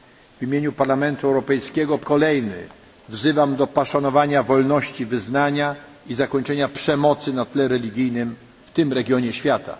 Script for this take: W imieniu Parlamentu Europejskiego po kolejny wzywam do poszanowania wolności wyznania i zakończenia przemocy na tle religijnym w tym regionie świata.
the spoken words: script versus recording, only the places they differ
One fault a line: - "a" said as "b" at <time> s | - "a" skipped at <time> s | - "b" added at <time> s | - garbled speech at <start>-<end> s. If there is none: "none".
none